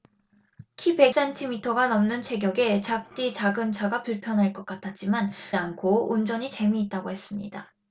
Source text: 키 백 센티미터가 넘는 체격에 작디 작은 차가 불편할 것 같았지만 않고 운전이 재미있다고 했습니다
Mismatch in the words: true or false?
false